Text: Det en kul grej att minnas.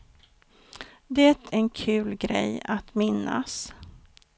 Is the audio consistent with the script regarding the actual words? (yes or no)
yes